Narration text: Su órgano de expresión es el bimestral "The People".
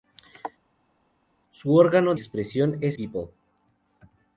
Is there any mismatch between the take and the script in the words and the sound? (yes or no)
yes